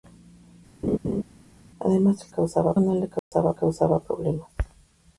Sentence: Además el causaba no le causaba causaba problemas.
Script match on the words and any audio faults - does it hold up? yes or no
no